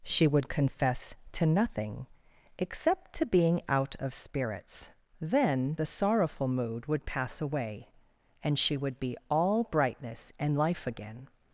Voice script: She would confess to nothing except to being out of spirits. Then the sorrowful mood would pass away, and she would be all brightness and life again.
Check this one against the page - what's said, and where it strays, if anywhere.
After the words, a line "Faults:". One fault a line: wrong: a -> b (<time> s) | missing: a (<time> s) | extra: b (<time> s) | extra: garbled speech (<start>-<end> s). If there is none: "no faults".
She would confess to nothing except to being out of spirits. Then the sorrowful mood would pass away, and she would be all brightness and life again.
Faults:
no faults